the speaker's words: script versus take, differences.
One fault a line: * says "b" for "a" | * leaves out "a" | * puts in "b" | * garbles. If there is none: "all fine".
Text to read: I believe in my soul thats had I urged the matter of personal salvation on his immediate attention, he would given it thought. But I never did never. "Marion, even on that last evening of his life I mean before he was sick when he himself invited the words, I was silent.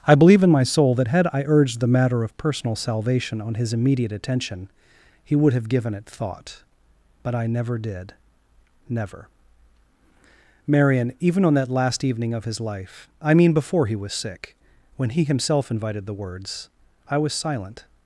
* says "that" for "thats"
* puts in "have"